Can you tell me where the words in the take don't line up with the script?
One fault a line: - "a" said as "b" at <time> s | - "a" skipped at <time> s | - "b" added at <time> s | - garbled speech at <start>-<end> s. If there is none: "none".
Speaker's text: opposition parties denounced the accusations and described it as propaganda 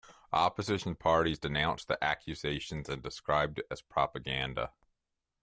none